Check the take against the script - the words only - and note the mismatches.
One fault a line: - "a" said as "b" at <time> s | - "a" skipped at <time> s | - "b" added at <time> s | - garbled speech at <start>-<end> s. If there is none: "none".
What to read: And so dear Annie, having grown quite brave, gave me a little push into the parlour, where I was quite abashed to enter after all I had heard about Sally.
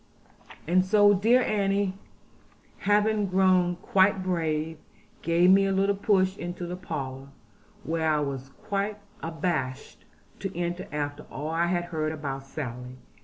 none